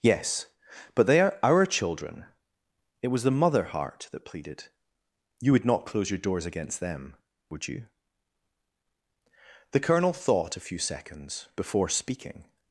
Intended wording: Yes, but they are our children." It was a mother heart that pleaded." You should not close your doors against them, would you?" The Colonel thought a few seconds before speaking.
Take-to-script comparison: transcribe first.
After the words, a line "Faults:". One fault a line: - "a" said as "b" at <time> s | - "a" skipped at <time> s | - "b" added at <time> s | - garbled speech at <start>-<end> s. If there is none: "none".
Yes, but they are our children." It was the mother heart that pleaded." You would not close your doors against them, would you?" The Colonel thought a few seconds before speaking.
Faults:
- "a" said as "the" at 3.2 s
- "should" said as "would" at 5.5 s